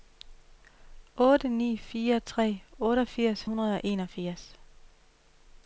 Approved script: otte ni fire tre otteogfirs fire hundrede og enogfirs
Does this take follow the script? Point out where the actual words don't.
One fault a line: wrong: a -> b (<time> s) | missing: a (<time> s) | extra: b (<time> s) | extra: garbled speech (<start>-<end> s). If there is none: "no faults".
missing: fire (3.4 s)